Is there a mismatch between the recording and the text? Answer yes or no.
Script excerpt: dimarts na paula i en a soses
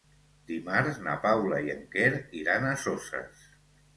yes